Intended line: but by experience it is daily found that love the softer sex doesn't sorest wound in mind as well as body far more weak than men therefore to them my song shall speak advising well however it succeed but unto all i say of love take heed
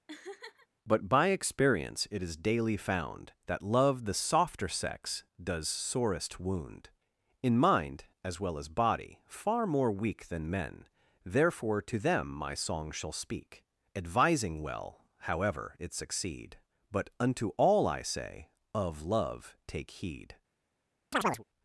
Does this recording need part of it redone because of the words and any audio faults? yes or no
yes